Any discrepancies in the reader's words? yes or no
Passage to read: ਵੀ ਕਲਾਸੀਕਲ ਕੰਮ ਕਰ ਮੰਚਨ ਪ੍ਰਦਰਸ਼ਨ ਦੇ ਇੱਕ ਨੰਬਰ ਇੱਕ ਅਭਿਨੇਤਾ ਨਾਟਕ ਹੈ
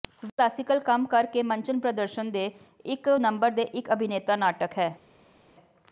yes